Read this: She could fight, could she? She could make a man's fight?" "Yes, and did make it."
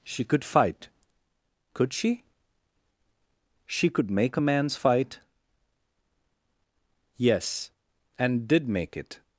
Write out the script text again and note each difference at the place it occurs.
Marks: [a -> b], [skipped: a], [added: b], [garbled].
She could fight, could she? She could make a man's fight?" "Yes, and did make it."